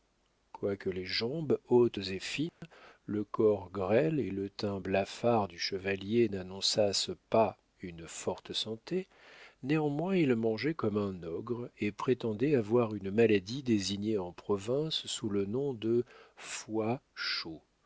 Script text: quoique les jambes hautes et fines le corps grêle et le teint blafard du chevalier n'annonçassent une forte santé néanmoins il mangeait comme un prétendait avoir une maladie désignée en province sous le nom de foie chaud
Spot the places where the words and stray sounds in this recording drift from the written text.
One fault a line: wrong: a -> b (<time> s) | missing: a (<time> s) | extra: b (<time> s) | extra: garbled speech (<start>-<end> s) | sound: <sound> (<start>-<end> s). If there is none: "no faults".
sound: dropout (2.5-2.6 s)
extra: pas (7.3 s)
extra: ogre et (11.2 s)